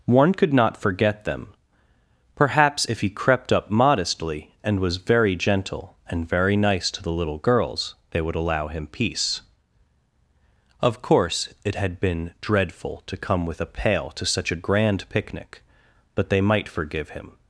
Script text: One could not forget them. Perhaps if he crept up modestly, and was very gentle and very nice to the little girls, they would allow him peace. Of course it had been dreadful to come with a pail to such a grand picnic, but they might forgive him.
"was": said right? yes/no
yes